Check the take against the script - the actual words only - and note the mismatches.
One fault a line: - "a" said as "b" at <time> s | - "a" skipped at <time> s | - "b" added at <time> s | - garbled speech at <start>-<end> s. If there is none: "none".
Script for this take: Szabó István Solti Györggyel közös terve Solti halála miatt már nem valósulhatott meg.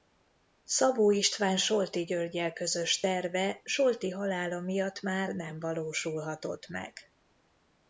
none